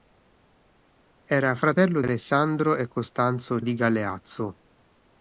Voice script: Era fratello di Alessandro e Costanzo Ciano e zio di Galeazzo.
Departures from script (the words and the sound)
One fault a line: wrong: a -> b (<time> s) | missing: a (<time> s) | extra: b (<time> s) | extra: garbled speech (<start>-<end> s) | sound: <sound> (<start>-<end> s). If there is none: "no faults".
missing: di (2.0 s)
missing: Ciano e zio (3.6 s)